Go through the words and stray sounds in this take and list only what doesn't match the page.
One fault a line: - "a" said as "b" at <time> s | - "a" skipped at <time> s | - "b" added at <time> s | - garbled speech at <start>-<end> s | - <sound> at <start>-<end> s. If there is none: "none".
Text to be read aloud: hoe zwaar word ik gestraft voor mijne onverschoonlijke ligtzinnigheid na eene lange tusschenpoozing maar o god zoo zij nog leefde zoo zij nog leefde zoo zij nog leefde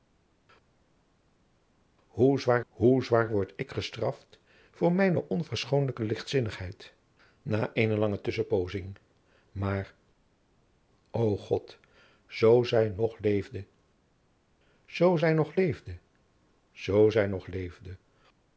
- "hoe zwaar" added at 2.7 s